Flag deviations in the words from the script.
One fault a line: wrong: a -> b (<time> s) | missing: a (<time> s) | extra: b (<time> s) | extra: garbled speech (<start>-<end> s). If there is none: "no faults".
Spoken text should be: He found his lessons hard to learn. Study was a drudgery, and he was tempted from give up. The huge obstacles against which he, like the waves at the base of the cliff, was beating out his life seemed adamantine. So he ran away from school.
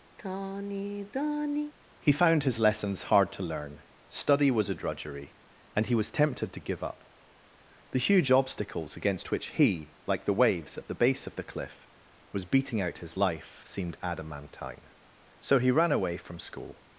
wrong: from -> to (6.5 s)